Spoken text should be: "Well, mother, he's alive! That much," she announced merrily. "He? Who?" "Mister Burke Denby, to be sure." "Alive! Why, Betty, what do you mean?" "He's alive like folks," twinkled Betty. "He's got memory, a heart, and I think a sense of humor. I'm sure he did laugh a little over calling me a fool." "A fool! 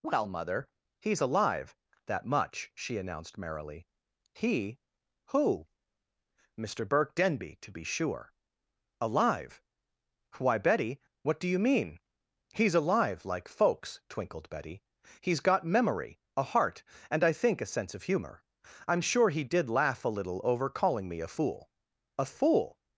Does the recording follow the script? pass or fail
pass